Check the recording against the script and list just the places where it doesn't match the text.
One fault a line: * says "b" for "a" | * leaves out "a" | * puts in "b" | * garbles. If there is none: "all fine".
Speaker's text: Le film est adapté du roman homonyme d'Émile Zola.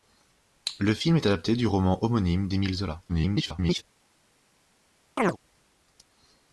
* garbles